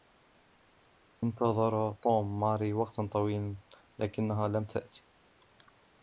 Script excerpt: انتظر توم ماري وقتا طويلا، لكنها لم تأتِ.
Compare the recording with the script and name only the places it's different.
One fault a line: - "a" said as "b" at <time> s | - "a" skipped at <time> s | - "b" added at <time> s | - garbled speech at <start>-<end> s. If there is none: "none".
none